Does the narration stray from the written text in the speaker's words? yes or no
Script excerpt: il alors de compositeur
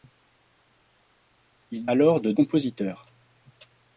no